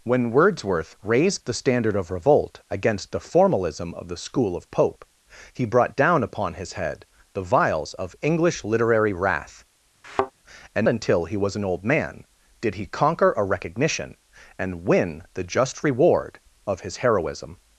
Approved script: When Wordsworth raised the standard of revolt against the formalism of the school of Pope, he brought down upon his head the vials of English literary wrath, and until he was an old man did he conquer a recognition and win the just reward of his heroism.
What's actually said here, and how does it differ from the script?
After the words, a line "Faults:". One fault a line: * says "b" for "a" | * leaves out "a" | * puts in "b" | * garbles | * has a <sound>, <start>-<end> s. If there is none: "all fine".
When Wordsworth raised the standard of revolt against the formalism of the school of Pope, he brought down upon his head the vials of English literary wrath, and until he was an old man did he conquer a recognition and win the just reward of his heroism.
Faults:
* has a thud, 10.0-10.3 s